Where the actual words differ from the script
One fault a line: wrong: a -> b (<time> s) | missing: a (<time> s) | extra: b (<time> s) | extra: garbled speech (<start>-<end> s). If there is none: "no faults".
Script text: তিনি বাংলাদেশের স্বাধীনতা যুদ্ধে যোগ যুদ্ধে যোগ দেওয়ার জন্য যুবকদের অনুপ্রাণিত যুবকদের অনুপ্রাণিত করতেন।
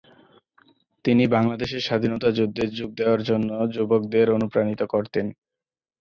missing: যুদ্ধে যোগ (2.9 s)
missing: যুবকদের অনুপ্রাণিত (4.8 s)